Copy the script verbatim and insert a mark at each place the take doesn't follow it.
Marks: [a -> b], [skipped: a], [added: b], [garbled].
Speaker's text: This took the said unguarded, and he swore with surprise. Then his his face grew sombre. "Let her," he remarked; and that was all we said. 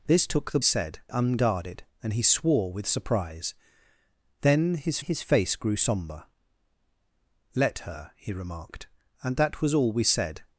This took the said unguarded, and he swore with surprise. Then his his face grew sombre. "Let her," he remarked; and that was all we said.